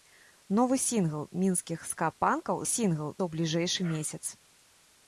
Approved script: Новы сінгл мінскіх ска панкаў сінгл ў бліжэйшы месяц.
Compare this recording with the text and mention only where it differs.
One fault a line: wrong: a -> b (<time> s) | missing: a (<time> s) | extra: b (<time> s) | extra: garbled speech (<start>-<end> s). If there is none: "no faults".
no faults